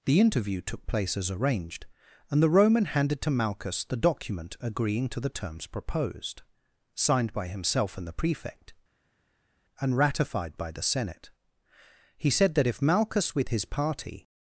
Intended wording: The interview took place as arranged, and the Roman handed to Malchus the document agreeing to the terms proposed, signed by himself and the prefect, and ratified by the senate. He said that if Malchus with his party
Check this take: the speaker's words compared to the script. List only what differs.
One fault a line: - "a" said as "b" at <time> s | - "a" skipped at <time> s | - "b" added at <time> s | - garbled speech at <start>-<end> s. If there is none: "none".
none